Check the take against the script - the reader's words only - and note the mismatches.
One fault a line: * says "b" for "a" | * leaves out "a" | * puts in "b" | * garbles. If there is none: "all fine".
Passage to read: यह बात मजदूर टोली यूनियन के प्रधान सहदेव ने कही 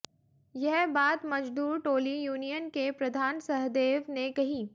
all fine